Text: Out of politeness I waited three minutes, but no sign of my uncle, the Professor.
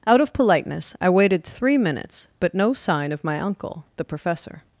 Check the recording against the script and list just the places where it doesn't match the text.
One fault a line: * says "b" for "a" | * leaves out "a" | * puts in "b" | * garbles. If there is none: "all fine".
all fine